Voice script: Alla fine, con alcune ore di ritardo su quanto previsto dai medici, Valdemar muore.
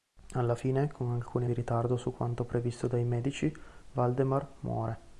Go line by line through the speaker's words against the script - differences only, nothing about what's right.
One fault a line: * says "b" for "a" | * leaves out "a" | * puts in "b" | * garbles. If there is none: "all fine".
* leaves out "ore"